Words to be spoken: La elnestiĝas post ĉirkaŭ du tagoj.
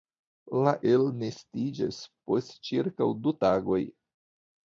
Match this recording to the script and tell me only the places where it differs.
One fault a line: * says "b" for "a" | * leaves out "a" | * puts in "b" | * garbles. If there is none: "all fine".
all fine